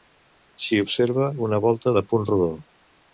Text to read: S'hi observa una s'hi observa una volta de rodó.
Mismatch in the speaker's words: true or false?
true